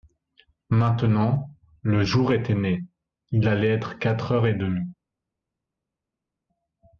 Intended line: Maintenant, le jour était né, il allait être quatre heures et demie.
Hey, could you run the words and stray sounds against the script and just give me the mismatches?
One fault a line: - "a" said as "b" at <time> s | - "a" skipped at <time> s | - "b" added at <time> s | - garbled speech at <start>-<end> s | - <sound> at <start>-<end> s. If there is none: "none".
none